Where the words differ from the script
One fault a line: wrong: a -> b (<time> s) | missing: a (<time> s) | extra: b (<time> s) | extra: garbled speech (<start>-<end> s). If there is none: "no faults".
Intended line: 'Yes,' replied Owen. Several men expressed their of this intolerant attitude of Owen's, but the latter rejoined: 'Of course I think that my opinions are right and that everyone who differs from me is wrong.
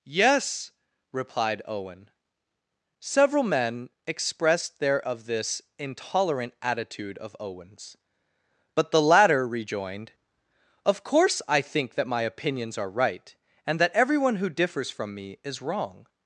no faults